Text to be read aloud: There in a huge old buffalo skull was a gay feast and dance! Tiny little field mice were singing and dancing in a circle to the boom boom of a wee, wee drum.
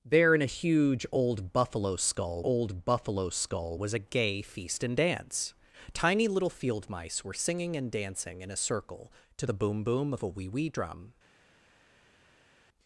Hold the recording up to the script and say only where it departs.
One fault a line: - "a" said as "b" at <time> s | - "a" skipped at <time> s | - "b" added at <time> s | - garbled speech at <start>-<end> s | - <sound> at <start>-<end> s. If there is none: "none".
- "old buffalo skull" added at 2.4 s